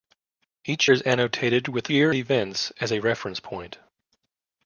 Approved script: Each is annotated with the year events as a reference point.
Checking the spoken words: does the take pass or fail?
pass